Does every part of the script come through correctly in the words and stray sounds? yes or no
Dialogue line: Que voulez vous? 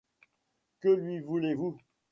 no